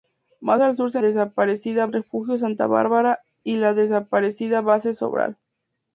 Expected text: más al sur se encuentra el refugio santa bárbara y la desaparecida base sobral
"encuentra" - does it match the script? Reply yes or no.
no